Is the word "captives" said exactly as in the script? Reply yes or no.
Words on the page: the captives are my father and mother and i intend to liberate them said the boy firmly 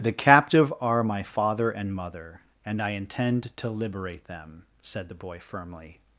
no